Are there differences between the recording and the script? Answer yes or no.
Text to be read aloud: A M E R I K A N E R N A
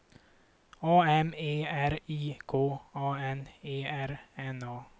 no